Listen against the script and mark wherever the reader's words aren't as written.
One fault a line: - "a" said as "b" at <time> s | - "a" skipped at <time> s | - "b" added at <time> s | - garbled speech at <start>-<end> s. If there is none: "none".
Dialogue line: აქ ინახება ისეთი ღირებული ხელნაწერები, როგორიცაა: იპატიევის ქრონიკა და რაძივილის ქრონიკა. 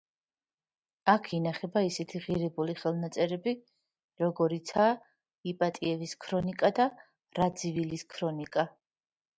none